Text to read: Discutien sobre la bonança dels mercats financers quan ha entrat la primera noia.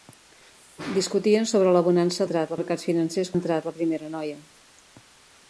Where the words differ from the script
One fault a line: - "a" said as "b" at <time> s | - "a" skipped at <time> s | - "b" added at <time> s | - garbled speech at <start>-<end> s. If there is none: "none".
- "dels" said as "entrat" at 2.3 s
- "quan" skipped at 3.4 s